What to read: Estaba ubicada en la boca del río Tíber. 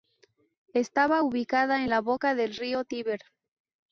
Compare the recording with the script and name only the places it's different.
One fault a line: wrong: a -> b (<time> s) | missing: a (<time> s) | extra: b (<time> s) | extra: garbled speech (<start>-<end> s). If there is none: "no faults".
no faults